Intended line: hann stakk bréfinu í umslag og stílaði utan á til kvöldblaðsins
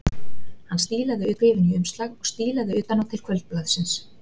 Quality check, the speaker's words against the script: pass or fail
fail